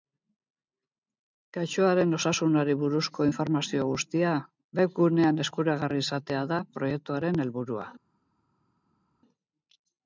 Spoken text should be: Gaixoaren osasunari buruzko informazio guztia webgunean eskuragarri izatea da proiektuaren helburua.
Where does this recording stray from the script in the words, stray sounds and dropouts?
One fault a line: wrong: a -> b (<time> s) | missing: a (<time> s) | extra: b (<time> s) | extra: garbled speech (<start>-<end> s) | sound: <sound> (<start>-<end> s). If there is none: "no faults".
no faults